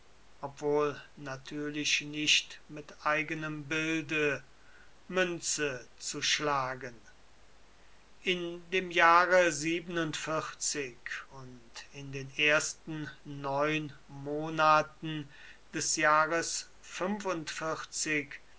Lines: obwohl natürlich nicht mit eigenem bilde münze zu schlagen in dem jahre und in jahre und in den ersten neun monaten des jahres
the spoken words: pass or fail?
fail